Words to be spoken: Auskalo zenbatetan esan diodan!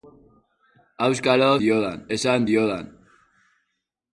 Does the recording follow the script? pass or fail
fail